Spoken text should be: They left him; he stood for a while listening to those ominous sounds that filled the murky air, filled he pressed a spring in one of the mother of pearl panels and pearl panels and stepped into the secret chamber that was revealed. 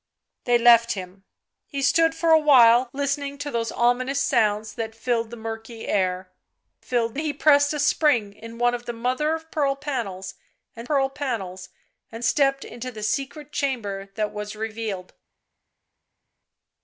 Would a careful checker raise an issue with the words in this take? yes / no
no